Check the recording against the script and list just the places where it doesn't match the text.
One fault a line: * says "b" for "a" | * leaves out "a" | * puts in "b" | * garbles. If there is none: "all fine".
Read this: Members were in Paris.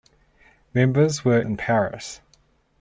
all fine